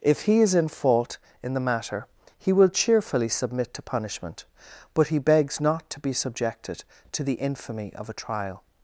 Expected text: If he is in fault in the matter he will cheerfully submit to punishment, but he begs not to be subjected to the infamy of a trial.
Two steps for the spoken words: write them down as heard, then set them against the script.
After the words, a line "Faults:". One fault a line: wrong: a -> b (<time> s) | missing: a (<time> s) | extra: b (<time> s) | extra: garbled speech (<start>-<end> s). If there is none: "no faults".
If he is in fault in the matter he will cheerfully submit to punishment, but he begs not to be subjected to the infamy of a trial.
Faults:
no faults